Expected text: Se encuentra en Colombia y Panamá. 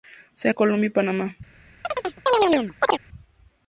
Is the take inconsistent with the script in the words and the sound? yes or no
yes